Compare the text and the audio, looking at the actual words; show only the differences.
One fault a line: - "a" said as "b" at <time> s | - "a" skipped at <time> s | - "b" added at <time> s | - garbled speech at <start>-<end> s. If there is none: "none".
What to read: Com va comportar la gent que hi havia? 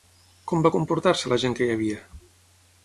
- "se" added at 1.2 s